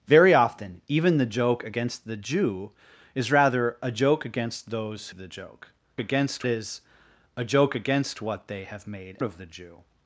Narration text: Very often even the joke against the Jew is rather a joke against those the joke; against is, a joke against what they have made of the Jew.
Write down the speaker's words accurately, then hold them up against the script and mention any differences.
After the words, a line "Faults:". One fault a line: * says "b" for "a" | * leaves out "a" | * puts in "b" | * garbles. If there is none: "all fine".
Very often even the joke against the Jew is rather a joke against those the joke; against is, a joke against what they have made of the Jew.
Faults:
all fine